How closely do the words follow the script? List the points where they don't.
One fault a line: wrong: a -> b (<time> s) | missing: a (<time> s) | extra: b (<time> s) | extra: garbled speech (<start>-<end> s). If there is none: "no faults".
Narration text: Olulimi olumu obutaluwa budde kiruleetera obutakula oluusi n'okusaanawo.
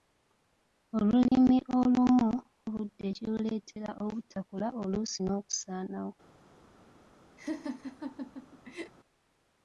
missing: obutaluwa (2.3 s)